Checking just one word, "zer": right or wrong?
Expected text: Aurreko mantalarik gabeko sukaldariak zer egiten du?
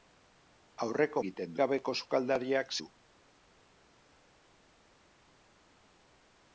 wrong